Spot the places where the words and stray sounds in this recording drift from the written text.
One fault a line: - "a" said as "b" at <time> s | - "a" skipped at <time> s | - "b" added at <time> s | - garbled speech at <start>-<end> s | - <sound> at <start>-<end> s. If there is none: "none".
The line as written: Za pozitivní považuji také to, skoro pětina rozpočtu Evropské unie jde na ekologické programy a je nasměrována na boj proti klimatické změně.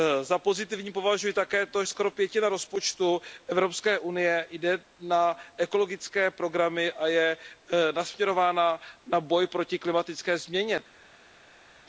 none